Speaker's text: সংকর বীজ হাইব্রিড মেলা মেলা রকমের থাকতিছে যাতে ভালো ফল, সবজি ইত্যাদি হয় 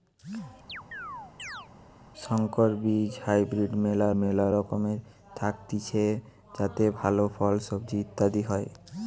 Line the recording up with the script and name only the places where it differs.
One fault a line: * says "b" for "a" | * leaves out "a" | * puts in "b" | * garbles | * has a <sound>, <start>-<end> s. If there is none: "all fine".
* has a chirp, 0.7-1.7 s